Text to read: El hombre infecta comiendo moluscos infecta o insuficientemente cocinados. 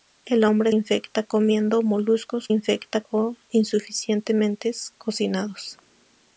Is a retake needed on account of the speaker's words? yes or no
no